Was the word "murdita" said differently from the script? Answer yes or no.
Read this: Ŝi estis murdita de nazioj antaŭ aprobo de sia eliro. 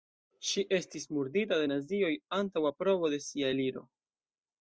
no